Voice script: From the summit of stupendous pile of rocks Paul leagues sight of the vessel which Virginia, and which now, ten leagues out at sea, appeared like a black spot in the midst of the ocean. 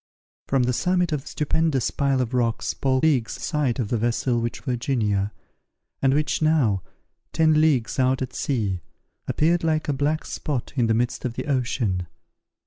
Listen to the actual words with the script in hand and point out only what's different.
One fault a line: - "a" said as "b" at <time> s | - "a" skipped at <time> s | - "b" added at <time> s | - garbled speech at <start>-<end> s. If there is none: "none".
none